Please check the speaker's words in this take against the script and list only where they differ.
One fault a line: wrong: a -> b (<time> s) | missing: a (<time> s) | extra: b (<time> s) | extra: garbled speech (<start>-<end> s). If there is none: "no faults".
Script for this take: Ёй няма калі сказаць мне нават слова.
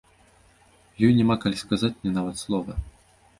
no faults